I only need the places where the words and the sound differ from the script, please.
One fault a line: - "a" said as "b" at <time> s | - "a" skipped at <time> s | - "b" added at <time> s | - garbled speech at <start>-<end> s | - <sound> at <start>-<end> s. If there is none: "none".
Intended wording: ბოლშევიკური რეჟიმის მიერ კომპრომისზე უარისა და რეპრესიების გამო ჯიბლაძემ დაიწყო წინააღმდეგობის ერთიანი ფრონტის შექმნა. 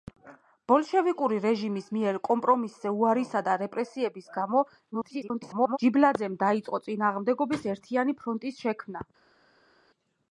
- garbled speech at 4.9-5.8 s